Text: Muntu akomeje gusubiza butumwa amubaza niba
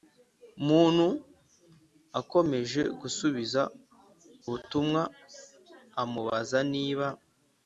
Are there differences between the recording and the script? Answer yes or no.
no